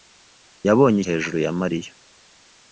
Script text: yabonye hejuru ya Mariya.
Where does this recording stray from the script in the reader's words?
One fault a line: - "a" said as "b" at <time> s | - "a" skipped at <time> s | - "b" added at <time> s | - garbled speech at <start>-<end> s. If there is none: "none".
none